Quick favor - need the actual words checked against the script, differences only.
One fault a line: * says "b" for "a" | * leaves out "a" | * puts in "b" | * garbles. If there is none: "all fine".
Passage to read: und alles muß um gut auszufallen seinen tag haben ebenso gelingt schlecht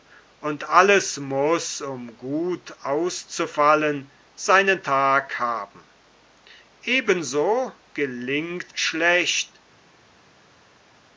all fine